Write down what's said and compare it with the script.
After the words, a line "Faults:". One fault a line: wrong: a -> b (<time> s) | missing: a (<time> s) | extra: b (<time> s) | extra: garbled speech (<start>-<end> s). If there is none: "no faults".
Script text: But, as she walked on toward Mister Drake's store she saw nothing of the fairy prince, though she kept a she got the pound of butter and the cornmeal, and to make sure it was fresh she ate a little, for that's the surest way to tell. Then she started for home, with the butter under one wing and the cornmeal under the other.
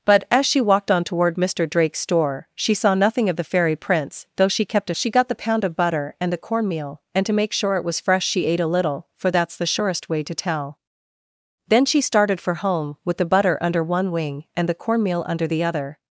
But, as she walked on toward Mister Drake's store she saw nothing of the fairy prince, though she kept a she got the pound of butter and the cornmeal, and to make sure it was fresh she ate a little, for that's the surest way to tell. Then she started for home, with the butter under one wing and the cornmeal under the other.
Faults:
no faults